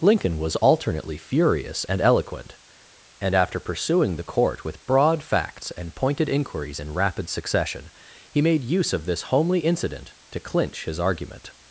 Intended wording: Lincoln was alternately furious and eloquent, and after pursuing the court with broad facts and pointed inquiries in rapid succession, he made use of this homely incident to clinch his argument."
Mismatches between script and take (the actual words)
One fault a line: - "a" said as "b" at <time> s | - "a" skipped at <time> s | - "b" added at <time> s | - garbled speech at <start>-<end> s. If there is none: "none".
none